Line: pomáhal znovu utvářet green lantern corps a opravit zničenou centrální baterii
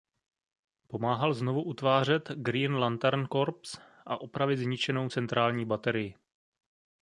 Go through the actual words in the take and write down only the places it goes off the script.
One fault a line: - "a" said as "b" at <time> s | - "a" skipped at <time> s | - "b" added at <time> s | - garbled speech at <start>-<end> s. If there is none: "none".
none